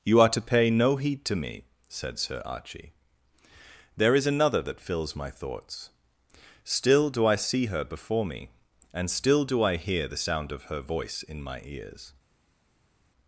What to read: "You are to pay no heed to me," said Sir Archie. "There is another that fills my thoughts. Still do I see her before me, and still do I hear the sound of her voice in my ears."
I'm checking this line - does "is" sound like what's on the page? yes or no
yes